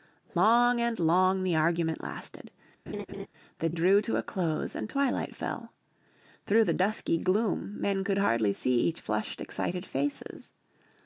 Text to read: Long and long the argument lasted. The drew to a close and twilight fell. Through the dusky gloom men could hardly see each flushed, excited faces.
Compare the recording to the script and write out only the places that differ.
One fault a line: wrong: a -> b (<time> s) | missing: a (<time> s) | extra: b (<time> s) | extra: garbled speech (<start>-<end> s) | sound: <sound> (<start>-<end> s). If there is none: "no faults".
sound: laugh (2.9-3.3 s)